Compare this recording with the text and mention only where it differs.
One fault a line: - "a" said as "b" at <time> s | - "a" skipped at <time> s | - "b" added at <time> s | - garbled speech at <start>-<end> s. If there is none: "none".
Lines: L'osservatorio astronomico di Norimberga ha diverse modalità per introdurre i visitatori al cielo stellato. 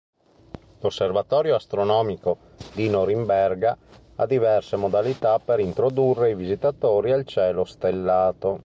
none